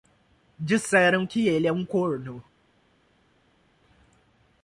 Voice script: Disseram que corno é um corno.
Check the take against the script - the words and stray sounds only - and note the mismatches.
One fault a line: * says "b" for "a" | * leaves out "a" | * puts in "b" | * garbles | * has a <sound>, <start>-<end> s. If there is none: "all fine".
* says "ele" for "corno"